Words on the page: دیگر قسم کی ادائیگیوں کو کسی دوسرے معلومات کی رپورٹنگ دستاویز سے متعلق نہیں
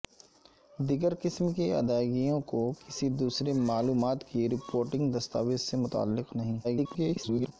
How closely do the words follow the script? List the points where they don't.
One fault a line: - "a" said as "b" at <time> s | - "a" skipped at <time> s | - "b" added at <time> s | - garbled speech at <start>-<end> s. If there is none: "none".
- garbled speech at 6.6-7.5 s